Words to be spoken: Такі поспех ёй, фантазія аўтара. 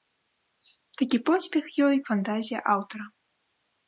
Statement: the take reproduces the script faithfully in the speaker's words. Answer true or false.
true